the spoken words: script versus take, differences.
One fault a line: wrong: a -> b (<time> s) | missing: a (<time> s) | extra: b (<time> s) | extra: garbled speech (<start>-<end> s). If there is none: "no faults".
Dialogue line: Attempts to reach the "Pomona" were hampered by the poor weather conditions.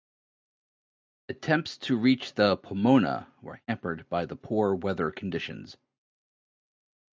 no faults